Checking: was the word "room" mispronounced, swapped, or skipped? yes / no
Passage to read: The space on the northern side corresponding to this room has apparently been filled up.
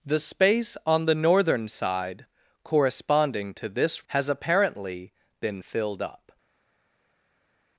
yes